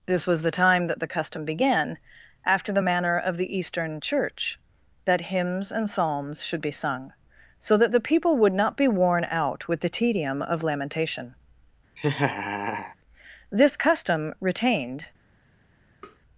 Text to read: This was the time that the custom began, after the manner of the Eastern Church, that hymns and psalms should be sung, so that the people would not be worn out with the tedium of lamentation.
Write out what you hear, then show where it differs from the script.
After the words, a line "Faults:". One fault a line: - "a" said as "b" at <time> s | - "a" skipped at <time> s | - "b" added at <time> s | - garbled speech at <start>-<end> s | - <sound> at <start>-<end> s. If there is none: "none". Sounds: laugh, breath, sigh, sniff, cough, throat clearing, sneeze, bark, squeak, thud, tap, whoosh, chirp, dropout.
This was the time that the custom began, after the manner of the Eastern Church, that hymns and psalms should be sung, so that the people would not be worn out with the tedium of lamentation. This custom, retained
Faults:
- laugh at 12.0-13.0 s
- "This custom retained" added at 13.5 s
- tap at 16.0-16.2 s